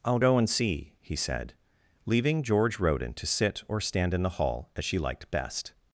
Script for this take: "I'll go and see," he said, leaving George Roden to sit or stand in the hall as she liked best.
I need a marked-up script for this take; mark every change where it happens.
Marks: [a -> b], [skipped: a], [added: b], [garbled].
"I'll go and see," he said, leaving George Roden to sit or stand in the hall as she liked best.